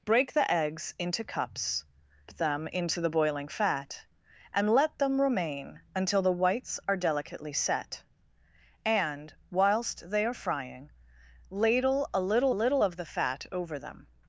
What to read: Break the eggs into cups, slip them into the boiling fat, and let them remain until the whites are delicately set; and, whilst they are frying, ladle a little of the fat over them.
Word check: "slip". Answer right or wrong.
wrong